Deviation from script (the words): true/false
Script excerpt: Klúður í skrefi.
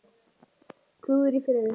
false